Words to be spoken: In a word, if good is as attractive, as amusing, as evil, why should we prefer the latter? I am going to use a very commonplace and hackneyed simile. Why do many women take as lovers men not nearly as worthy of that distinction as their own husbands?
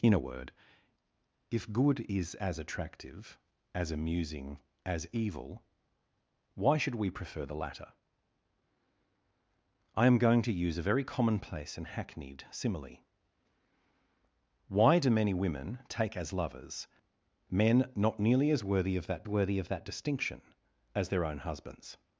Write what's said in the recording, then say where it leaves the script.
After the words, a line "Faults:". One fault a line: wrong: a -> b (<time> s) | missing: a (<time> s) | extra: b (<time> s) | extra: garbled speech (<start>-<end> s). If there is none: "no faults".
In a word, if good is as attractive, as amusing, as evil, why should we prefer the latter? I am going to use a very commonplace and hackneyed simile. Why do many women take as lovers men not nearly as worthy of that worthy of that distinction as their own husbands?
Faults:
extra: worthy of that (19.3 s)